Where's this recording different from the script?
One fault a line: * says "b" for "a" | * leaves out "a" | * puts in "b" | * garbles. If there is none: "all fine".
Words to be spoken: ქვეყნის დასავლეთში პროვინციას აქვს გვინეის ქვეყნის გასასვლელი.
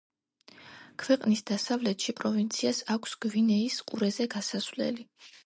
* says "ყურეზე" for "ქვეყნის"